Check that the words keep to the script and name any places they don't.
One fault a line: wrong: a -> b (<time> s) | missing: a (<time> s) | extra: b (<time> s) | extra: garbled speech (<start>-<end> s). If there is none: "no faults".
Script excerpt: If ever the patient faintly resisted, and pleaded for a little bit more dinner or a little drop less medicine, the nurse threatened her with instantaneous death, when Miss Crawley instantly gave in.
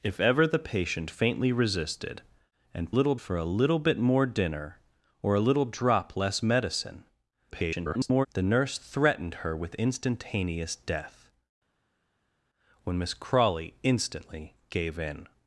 wrong: pleaded -> little (2.9 s)
extra: garbled speech (7.5-8.3 s)